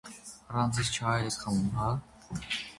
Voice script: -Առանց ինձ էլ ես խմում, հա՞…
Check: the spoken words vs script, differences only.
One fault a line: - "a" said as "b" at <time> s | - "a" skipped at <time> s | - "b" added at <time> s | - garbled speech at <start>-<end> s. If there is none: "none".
- "չայ" added at 1.0 s